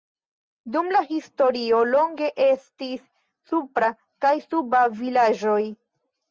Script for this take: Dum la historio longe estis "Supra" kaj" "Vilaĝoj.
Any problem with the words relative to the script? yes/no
yes